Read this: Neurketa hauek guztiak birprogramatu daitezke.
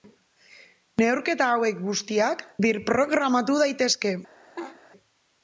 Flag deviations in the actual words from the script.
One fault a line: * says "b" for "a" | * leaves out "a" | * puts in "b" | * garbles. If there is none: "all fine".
all fine